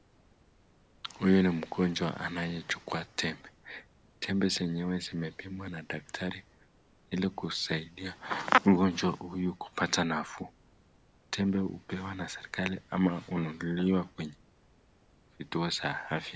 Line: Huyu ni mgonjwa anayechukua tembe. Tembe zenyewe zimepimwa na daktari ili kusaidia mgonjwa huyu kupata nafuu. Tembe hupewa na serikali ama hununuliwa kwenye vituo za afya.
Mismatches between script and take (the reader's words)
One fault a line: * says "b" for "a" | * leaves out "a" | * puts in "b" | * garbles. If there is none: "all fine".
all fine